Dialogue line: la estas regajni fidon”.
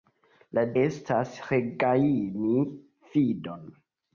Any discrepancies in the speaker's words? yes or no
no